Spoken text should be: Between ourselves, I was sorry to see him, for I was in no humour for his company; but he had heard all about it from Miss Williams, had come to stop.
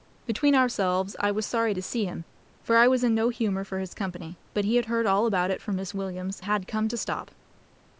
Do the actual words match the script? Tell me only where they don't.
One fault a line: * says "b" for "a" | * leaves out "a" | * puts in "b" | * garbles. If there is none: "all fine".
all fine